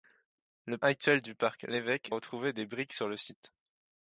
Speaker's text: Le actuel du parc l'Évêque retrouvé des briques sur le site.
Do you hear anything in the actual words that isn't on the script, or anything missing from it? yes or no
no